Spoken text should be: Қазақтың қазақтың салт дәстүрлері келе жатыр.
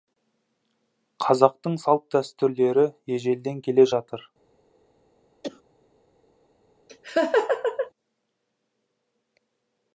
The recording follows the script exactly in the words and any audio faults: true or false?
false